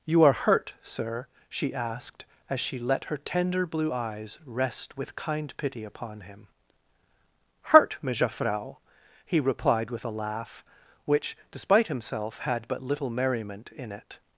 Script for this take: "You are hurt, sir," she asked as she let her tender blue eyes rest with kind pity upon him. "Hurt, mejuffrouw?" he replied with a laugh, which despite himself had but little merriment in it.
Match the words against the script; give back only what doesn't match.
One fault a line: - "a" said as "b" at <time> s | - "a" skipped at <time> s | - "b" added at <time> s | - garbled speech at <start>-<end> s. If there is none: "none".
none